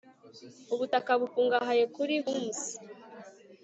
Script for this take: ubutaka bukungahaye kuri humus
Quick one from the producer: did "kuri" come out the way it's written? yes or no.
yes